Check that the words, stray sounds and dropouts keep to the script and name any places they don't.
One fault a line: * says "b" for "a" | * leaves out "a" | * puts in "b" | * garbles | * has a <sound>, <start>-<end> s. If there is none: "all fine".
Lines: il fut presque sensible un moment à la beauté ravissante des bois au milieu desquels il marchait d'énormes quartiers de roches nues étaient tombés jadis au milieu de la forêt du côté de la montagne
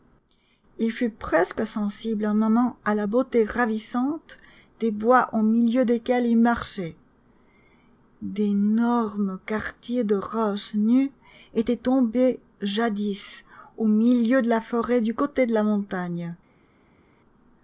all fine